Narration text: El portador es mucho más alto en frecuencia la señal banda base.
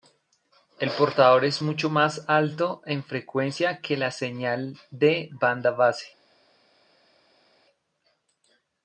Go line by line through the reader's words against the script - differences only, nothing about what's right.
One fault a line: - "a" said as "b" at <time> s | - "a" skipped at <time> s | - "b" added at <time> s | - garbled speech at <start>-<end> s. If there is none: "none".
- "que" added at 3.8 s
- "de" added at 4.9 s